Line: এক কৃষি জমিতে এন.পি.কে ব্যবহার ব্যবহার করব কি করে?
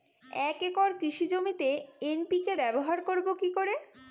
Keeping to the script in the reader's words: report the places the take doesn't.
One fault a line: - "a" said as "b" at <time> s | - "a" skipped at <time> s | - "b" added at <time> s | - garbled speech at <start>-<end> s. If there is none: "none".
- "একর" added at 0.6 s
- "ব্যবহার" skipped at 3.0 s